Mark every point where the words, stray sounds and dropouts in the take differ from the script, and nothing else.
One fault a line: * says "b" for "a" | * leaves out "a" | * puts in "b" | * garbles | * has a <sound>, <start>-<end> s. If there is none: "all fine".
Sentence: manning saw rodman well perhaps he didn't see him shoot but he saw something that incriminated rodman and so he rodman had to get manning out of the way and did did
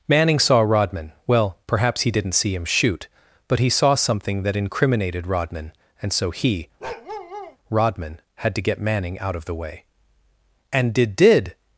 * has a bark, 6.8-7.6 s